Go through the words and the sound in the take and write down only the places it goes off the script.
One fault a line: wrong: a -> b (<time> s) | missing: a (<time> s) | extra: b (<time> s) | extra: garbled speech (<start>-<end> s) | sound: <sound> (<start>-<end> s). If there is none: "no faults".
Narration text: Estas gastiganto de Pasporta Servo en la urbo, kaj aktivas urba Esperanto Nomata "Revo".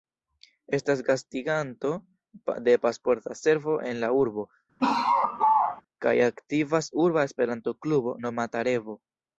sound: laugh (4.8-5.8 s)
extra: Klubo (7.9 s)